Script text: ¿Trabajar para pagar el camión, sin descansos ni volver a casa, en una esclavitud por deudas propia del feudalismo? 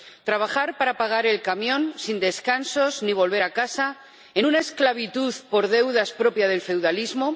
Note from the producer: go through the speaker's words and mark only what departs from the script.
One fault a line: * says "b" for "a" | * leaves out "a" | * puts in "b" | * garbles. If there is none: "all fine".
all fine